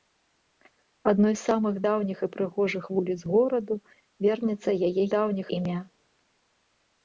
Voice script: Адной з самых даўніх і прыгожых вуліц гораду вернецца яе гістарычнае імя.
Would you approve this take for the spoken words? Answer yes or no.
no